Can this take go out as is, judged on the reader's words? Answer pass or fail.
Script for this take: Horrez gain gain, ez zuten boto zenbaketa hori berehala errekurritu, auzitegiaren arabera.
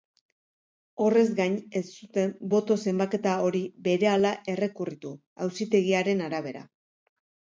fail